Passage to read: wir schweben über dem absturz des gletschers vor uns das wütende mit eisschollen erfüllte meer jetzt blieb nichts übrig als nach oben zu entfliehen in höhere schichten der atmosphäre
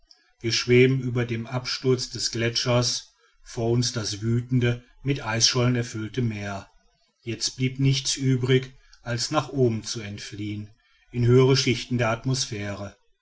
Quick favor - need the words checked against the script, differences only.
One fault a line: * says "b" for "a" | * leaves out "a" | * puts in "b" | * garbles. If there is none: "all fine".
all fine